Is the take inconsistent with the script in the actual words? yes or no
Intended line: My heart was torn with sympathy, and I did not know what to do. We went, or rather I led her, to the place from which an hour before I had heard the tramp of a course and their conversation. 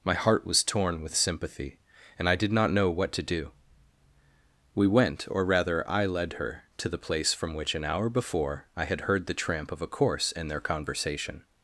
no